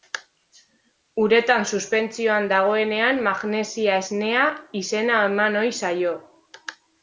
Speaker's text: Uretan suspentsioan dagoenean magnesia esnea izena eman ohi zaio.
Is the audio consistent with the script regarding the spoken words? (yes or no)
yes